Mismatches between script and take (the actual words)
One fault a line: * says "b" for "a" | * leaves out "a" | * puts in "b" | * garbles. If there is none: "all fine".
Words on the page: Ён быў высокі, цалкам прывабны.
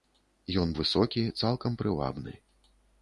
* leaves out "быў"